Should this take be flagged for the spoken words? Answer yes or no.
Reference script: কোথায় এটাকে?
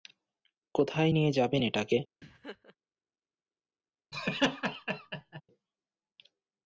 yes